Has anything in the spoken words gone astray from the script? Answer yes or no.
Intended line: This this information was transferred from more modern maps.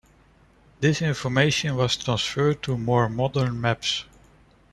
yes